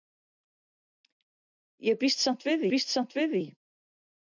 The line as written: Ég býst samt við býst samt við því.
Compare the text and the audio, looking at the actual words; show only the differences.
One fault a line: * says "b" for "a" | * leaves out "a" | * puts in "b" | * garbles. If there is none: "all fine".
all fine